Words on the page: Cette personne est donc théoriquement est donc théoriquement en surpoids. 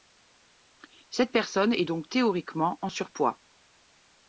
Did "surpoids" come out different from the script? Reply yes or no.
no